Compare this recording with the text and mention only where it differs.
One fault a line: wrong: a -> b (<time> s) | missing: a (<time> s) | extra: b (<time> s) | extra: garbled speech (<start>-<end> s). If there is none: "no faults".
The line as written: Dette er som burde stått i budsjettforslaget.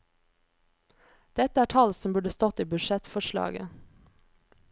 extra: tall (1.7 s)